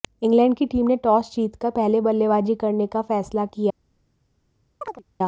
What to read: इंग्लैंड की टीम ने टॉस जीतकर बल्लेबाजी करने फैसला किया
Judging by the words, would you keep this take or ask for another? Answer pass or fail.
fail